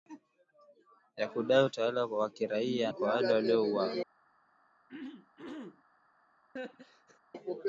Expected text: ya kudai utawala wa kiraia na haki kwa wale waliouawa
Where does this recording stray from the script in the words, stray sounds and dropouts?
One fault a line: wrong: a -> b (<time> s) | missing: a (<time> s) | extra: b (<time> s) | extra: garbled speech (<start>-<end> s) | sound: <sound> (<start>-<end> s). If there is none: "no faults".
missing: na haki (2.9 s)
sound: throat clearing (4.9-5.8 s)
sound: laugh (6.6-7.2 s)